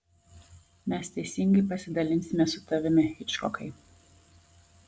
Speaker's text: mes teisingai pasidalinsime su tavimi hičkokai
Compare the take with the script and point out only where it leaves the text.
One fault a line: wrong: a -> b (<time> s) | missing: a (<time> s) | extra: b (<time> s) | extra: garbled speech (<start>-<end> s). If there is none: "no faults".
no faults